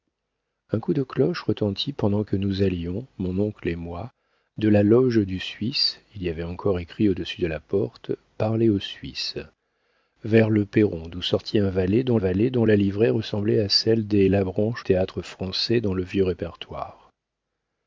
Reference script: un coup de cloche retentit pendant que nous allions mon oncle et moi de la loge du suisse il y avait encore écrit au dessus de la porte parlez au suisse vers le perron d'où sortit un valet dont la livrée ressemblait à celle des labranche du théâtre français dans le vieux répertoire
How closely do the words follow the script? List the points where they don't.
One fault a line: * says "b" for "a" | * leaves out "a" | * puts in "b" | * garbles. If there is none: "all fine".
* puts in "valet dont"
* leaves out "du"